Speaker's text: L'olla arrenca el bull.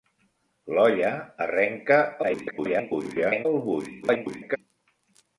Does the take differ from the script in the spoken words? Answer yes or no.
yes